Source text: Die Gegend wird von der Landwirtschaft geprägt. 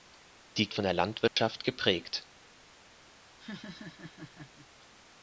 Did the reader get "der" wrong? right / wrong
right